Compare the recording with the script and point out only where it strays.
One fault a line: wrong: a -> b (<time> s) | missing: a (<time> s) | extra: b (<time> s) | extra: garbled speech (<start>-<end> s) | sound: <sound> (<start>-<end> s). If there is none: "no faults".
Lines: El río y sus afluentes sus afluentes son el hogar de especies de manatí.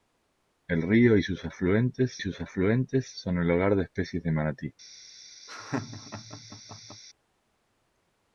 sound: laugh (5.5-7.0 s)